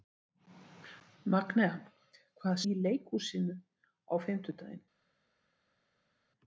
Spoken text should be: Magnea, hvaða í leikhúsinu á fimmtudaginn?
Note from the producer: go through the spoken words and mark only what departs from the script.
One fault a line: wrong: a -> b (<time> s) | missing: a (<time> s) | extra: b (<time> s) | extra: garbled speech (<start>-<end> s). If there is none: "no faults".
no faults